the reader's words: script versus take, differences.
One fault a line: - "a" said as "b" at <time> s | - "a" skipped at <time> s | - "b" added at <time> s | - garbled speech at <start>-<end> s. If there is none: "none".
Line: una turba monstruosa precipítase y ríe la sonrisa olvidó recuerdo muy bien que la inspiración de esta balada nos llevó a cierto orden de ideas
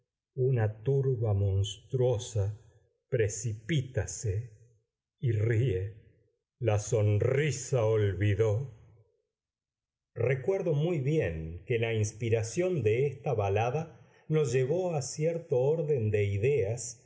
none